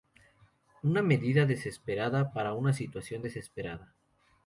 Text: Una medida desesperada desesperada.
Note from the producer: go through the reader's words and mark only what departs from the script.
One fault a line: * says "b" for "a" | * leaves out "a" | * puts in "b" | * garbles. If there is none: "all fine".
* puts in "para una situación"